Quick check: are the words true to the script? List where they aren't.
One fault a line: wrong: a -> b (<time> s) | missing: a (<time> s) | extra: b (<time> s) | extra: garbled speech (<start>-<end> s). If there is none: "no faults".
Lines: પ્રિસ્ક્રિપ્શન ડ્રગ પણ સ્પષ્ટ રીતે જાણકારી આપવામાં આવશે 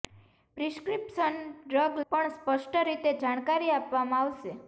no faults